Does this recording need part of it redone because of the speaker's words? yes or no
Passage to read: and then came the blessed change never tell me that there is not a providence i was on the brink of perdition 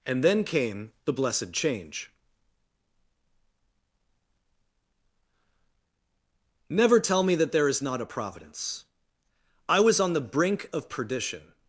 no